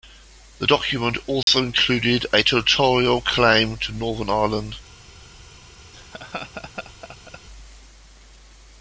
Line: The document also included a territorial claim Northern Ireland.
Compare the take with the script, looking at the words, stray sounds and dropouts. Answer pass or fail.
fail